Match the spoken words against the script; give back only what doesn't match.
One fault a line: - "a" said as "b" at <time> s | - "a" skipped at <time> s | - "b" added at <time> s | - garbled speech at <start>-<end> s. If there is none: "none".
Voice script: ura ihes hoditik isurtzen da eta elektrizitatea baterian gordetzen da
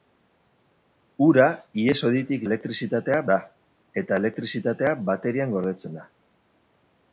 - "isurtzen" said as "elektrizitatea" at 2.5 s